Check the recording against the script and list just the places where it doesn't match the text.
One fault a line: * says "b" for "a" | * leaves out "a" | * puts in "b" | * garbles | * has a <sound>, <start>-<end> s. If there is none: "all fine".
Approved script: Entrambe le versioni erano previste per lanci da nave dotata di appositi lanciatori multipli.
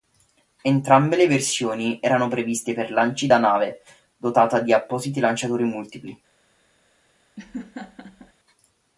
* has a laugh, 7.4-8.3 s